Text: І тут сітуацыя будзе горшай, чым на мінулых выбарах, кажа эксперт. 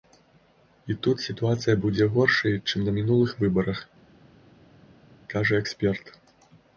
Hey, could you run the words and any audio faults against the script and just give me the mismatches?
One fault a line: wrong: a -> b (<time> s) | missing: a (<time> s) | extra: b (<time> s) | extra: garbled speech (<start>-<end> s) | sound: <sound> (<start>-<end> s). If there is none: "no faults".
no faults